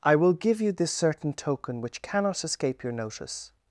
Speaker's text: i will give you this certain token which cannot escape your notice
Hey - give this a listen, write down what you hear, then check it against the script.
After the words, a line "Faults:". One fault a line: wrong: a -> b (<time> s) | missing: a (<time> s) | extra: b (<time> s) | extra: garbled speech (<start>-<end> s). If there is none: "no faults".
i will give you this certain token which cannot escape your notice
Faults:
no faults